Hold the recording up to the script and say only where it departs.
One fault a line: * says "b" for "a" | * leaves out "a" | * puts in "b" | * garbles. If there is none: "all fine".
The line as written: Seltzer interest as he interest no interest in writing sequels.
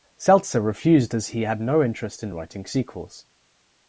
* says "refused" for "interest"
* says "had" for "interest"